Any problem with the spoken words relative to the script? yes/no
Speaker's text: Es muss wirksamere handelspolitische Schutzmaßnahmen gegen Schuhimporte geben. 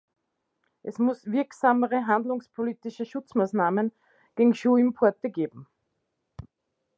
no